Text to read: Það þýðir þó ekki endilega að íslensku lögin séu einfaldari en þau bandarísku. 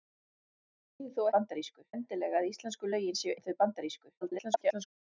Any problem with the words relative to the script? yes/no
yes